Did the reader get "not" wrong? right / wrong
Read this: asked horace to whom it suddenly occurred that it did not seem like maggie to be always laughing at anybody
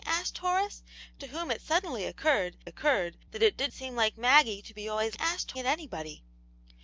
wrong